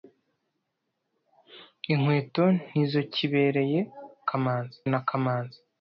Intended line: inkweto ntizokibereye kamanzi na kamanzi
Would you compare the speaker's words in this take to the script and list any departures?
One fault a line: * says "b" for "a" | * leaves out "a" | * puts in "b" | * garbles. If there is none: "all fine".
all fine